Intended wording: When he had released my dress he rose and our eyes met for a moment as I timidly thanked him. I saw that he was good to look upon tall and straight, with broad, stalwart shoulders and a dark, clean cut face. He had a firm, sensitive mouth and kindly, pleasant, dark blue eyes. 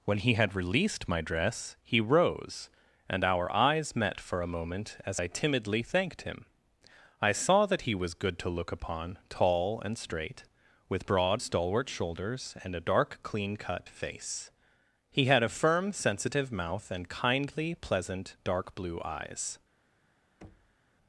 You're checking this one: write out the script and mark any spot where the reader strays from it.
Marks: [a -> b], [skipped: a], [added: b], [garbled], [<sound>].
When he had released my dress he rose and our eyes met for a moment as I timidly thanked him. I saw that he was good to look upon tall and straight, with broad, stalwart shoulders and a dark, clean cut face. He had a firm, sensitive mouth and kindly, pleasant, dark blue eyes. [thud]